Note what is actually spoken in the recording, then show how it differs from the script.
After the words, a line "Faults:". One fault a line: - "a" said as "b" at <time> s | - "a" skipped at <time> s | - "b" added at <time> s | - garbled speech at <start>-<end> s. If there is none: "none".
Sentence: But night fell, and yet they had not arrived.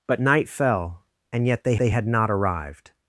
But night fell, and yet they they had not arrived.
Faults:
- "they" added at 1.8 s